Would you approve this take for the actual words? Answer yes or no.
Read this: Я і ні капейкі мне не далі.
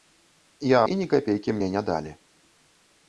yes